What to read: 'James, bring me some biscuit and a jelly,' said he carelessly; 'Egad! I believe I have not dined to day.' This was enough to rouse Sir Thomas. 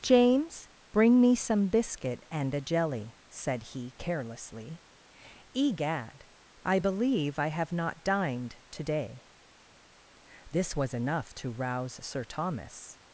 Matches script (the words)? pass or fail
pass